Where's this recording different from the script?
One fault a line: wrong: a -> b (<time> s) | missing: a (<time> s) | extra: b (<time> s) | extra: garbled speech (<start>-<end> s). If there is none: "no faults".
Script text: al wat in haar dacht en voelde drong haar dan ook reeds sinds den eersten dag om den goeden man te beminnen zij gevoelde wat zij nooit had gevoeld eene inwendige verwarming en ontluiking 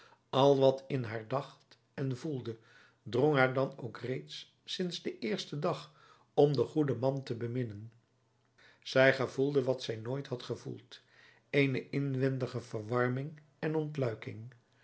no faults